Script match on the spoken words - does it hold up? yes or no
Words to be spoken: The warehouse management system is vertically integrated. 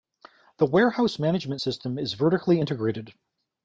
yes